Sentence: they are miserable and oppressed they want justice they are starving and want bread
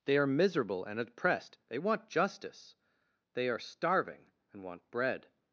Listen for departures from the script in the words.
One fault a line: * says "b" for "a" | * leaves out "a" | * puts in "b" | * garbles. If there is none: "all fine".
all fine